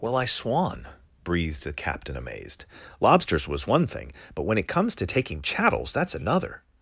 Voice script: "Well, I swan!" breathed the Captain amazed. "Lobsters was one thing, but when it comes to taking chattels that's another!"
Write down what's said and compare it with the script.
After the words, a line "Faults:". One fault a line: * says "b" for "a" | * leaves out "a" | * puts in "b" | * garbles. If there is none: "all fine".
"Well, I swan!" breathed the Captain amazed. "Lobsters was one thing, but when it comes to taking chattels that's another!"
Faults:
all fine